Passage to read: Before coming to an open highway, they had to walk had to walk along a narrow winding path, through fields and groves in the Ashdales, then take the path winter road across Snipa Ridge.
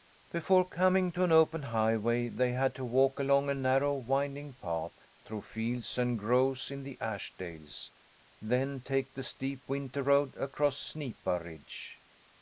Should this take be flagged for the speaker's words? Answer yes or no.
yes